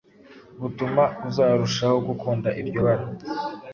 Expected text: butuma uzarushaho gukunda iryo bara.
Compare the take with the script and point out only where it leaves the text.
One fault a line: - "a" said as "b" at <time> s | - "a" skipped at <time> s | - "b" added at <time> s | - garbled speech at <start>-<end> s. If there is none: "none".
none